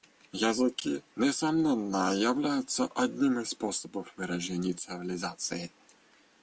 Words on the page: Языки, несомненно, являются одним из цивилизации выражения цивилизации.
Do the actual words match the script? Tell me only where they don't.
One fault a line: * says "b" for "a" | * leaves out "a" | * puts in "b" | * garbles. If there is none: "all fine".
* says "способов" for "цивилизации"